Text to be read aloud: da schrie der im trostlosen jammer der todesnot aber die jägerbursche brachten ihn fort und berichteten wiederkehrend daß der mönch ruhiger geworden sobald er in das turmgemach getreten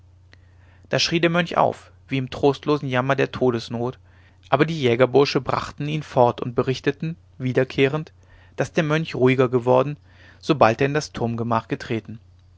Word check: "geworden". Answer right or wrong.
right